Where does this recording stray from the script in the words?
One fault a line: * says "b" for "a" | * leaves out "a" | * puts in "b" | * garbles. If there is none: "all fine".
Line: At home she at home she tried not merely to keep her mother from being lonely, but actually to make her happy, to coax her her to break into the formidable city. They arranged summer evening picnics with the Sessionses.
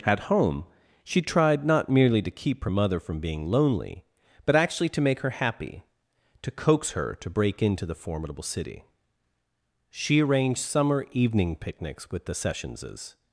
* leaves out "at home she"
* leaves out "her"
* says "She" for "They"